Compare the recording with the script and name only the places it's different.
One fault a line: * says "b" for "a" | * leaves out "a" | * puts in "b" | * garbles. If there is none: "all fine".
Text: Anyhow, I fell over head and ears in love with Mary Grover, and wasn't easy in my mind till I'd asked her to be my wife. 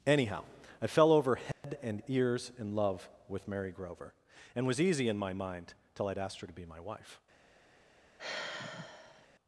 * says "was" for "wasn't"